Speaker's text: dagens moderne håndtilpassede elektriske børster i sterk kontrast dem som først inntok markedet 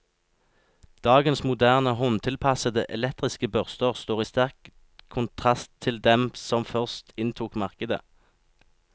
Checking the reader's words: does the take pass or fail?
fail